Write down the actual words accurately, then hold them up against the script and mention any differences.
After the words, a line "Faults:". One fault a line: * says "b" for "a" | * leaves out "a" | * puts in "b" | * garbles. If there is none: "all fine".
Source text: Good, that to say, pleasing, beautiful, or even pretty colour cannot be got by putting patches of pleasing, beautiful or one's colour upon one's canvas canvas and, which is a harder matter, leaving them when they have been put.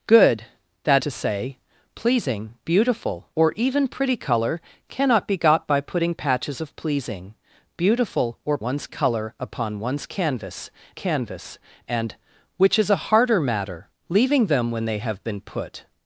Good, that to say, pleasing, beautiful, or even pretty colour cannot be got by putting patches of pleasing, beautiful or one's colour upon one's canvas canvas and, which is a harder matter, leaving them when they have been put.
Faults:
all fine